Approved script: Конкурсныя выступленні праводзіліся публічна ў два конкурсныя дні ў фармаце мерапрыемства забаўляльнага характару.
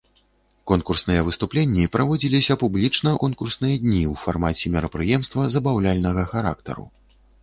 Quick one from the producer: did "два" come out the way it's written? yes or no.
no